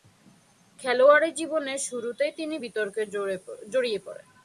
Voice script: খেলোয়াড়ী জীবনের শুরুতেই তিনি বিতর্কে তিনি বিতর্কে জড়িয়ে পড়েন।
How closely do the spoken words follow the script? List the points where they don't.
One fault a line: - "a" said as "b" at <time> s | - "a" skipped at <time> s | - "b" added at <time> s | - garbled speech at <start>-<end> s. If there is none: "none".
- "তিনি বিতর্কে" skipped at 3.0 s